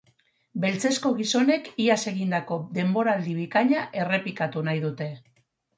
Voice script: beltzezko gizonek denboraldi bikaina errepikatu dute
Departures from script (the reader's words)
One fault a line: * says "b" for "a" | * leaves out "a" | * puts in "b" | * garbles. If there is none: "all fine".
* puts in "iaz egindako"
* puts in "nahi"